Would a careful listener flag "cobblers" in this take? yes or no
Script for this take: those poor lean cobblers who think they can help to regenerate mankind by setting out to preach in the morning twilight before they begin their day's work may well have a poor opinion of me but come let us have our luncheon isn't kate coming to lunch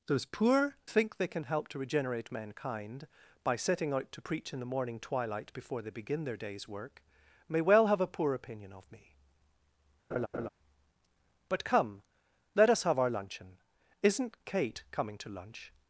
yes